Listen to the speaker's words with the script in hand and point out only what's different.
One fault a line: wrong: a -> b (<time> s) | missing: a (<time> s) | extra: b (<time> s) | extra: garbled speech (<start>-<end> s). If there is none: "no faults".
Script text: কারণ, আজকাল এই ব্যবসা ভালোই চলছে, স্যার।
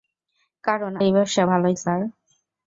missing: আজকাল (0.9 s)
missing: চলছে (1.7 s)